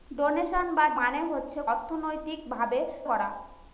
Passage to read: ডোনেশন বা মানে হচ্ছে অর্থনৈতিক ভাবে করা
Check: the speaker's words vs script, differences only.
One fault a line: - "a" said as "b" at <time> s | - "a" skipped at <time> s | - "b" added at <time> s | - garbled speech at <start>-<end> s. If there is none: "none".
none